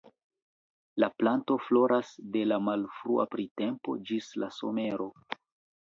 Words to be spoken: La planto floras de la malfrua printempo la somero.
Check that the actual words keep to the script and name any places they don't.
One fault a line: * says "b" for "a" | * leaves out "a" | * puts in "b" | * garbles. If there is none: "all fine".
* puts in "ĝis"